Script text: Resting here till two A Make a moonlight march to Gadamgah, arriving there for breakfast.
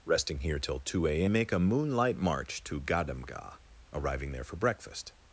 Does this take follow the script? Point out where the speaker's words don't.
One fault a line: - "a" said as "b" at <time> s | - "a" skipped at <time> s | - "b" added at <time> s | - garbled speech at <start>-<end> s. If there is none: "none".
none